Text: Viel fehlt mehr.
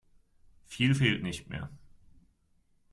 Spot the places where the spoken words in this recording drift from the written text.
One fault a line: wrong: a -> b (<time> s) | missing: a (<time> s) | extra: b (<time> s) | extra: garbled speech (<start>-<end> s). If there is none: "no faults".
extra: nicht (1.2 s)